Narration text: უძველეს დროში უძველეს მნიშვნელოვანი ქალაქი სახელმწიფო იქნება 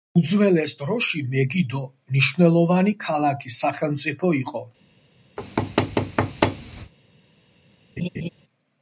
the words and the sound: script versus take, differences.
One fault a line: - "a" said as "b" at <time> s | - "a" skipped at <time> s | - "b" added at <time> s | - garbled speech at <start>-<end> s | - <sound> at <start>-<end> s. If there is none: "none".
- "უძველეს" said as "მეგიდო" at 1.3 s
- "იქნება" said as "იყო" at 4.4 s
- thud at 5.4-6.9 s
- laugh at 8.0-8.3 s